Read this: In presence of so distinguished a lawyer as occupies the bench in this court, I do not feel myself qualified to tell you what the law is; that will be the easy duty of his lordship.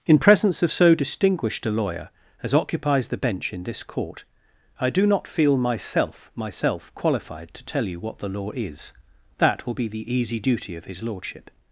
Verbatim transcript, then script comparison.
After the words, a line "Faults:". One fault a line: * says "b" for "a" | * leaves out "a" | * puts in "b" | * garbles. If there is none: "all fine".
In presence of so distinguished a lawyer as occupies the bench in this court, I do not feel myself myself qualified to tell you what the law is; that will be the easy duty of his lordship.
Faults:
* puts in "myself"